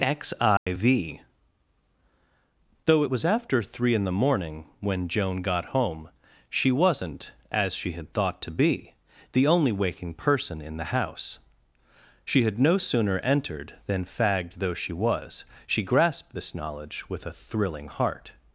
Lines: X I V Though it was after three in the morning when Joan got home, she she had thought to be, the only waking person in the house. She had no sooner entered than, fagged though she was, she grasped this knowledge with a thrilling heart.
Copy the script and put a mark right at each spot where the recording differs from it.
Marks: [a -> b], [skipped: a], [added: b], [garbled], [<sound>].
X I [dropout] V Though it was after three in the morning when Joan got home, she [added: wasn't as] she had thought to be, the only waking person in the house. She had no sooner entered than, fagged though she was, she grasped this knowledge with a thrilling heart.